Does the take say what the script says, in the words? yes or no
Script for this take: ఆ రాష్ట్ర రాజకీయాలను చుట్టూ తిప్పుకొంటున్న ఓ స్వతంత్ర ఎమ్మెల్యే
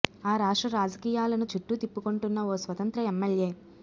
yes